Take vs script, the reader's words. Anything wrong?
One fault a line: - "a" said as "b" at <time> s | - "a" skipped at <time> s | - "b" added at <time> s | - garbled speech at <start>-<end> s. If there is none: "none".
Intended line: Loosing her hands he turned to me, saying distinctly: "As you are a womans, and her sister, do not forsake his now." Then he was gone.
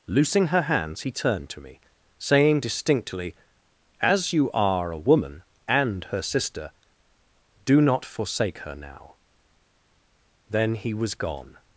- "womans" said as "woman" at 5.0 s
- "his" said as "her" at 8.6 s